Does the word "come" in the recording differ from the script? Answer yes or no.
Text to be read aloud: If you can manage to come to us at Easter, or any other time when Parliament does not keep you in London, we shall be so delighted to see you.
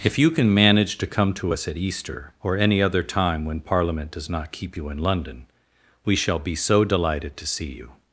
no